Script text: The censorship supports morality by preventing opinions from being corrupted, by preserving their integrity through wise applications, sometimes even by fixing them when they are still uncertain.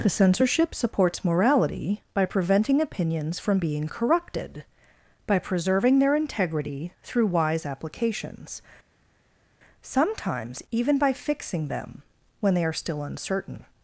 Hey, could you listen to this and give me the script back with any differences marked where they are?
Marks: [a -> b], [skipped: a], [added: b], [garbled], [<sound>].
The censorship supports morality by preventing opinions from being corrupted, by preserving their integrity through wise applications, sometimes even by fixing them when they are still uncertain.